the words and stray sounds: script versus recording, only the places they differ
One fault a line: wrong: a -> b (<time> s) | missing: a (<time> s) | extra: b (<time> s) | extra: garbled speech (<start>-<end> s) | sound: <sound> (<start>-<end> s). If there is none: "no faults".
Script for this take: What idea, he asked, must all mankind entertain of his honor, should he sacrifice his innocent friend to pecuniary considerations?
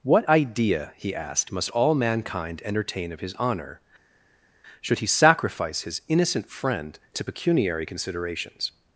no faults